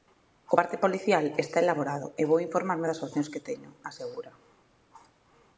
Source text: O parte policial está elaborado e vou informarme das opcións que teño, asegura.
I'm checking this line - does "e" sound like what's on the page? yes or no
yes